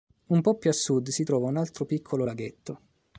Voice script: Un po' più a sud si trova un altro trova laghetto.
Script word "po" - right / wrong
right